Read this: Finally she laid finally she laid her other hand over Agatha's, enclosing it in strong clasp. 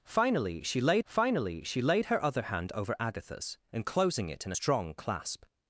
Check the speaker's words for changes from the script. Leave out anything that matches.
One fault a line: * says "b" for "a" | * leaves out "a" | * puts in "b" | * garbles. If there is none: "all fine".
all fine